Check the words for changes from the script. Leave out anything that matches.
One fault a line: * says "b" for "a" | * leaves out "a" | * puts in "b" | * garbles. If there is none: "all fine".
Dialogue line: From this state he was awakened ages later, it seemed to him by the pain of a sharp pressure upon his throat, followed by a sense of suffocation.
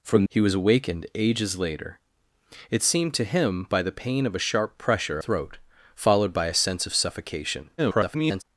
* leaves out "this state"
* leaves out "upon his"
* garbles